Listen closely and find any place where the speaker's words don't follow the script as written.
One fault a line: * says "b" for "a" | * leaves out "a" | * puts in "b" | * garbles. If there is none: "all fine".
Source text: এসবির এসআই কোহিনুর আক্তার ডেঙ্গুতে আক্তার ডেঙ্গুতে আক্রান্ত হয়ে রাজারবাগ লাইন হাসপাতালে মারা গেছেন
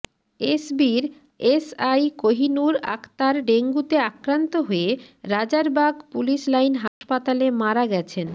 * leaves out "আক্তার ডেঙ্গুতে"
* puts in "পুলিশ"